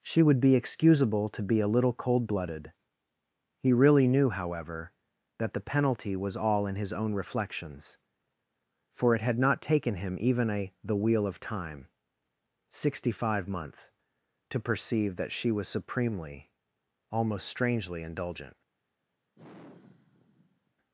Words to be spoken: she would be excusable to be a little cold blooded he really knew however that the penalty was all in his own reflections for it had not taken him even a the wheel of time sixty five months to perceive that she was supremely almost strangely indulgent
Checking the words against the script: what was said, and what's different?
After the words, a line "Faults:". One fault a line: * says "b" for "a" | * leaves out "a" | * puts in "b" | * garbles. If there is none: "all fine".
she would be excusable to be a little cold blooded he really knew however that the penalty was all in his own reflections for it had not taken him even a the wheel of time sixty five months to perceive that she was supremely almost strangely indulgent
Faults:
all fine